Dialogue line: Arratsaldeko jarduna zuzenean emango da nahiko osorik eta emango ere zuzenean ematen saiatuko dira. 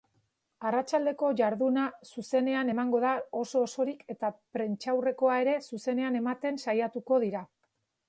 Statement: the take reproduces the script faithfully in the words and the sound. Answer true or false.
false